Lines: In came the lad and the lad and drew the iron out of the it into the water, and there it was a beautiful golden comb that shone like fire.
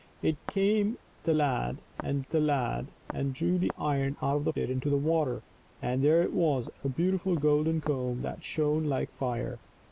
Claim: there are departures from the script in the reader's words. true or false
false